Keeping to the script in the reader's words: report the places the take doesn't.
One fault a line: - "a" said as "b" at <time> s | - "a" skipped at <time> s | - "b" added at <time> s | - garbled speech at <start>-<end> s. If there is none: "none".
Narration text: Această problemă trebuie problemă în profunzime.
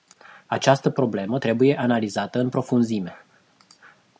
- "problemă" said as "analizată" at 1.8 s